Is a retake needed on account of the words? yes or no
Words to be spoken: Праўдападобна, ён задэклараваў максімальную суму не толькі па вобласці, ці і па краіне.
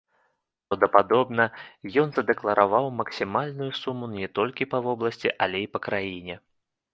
yes